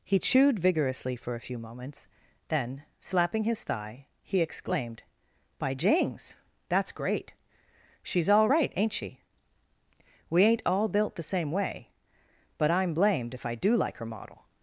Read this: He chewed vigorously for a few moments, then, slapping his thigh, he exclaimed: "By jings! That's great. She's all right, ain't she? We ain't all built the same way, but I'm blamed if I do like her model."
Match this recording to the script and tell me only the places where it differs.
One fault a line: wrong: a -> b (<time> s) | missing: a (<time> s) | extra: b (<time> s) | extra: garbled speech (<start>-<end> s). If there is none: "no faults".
no faults